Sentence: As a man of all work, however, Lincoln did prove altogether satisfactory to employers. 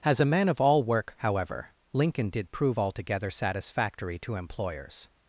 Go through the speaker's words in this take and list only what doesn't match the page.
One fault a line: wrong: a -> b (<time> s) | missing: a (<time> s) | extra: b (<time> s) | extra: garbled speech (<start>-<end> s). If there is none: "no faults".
no faults